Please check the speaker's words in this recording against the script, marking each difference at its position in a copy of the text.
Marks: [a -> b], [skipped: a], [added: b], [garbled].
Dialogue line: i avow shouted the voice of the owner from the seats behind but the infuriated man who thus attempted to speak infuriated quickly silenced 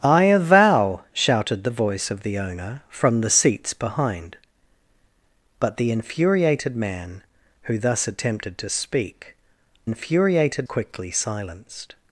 i avow shouted the voice of the owner from the seats behind but the infuriated man who thus attempted to speak infuriated quickly silenced